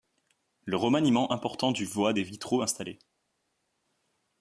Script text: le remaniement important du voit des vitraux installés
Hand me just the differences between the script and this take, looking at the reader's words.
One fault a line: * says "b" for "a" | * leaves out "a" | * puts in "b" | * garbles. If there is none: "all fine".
all fine